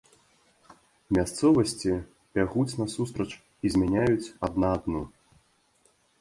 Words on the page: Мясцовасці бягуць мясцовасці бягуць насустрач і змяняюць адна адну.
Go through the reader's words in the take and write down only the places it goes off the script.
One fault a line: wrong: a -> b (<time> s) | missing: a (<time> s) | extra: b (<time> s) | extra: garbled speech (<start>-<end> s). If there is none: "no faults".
missing: мясцовасці бягуць (2.8 s)